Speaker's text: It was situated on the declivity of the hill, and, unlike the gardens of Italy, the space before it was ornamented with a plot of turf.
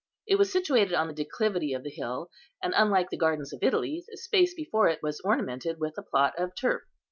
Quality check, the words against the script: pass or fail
pass